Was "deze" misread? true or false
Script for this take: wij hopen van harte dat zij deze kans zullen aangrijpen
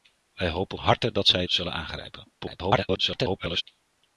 true